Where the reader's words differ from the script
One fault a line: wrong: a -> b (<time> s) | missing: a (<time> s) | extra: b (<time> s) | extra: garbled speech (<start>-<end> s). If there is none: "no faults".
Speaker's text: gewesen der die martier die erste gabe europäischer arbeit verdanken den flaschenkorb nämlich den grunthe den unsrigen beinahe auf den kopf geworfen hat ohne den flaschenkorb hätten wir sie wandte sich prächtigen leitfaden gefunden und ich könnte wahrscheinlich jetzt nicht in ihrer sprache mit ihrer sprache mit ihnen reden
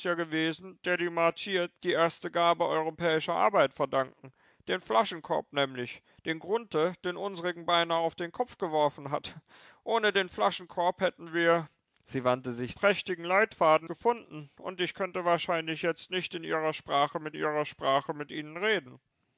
no faults